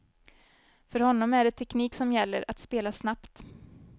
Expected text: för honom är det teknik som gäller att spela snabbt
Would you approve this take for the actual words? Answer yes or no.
yes